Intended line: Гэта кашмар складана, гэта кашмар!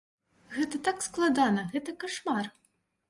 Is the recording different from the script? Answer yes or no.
yes